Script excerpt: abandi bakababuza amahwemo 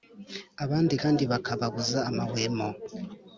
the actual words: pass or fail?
fail